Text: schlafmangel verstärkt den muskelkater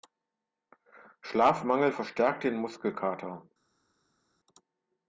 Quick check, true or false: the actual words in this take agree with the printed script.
true